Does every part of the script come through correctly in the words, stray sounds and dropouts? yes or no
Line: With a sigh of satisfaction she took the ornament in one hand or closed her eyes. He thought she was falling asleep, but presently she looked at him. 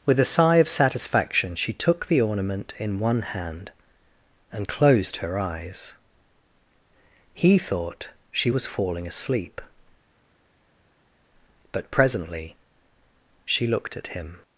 no